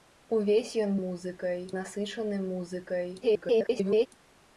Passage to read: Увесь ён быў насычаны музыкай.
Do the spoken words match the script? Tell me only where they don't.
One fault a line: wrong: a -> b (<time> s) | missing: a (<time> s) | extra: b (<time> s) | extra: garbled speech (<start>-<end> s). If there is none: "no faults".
wrong: быў -> музыкай (1.0 s)
extra: garbled speech (3.2-4.1 s)